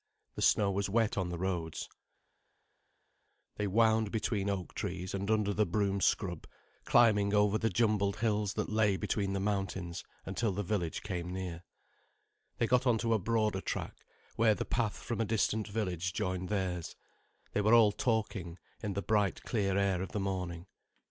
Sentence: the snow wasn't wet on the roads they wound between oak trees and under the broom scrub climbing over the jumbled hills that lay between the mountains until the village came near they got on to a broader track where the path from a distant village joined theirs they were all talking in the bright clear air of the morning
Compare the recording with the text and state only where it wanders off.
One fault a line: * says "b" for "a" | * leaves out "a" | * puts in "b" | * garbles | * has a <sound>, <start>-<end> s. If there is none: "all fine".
* says "was" for "wasn't"